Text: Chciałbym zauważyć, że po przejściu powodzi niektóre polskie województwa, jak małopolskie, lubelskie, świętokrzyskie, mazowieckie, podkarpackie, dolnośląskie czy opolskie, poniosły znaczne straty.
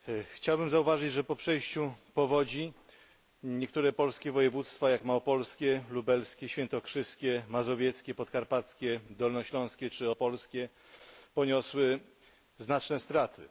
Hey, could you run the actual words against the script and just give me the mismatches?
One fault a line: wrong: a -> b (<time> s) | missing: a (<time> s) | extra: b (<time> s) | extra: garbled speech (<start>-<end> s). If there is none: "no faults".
no faults